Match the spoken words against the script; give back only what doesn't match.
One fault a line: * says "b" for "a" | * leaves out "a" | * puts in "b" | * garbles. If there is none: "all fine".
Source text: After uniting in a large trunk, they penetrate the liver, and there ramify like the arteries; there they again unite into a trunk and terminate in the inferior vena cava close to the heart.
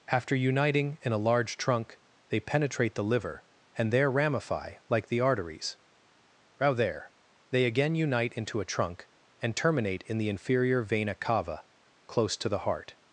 * puts in "row"